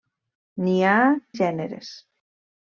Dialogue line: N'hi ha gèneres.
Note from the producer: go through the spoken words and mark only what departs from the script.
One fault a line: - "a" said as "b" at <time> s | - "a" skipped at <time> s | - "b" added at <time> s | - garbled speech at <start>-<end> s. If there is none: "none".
none